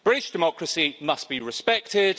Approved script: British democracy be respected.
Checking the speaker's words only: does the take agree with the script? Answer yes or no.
no